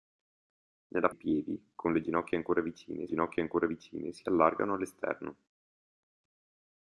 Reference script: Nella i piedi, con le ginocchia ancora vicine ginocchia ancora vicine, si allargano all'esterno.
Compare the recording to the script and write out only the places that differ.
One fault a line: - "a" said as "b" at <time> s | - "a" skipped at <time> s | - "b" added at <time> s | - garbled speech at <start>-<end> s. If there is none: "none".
none